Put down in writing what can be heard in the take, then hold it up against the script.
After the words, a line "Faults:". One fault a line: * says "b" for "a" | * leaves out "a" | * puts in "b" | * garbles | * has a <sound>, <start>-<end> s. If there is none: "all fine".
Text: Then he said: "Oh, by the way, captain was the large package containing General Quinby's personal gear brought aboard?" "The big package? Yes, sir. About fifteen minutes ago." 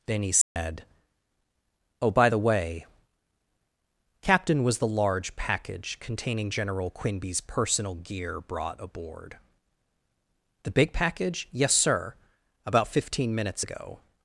Then he said: "Oh, by the way, captain was the large package containing General Quinby's personal gear brought aboard?" "The big package? Yes, sir. About fifteen minutes ago."
Faults:
* has a dropout, 0.4-0.6 s